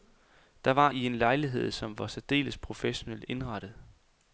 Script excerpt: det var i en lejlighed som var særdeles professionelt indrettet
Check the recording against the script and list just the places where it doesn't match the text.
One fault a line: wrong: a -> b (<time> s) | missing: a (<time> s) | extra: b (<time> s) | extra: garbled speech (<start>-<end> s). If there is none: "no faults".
no faults